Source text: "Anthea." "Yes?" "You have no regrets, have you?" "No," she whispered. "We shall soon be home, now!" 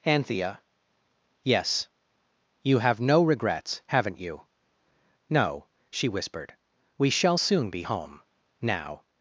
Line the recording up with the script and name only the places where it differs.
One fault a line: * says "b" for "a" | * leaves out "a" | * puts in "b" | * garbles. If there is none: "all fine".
* says "haven't" for "have"